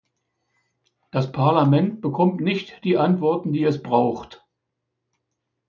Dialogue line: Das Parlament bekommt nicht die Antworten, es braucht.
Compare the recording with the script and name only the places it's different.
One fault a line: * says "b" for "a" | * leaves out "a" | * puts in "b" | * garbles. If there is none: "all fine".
* puts in "die"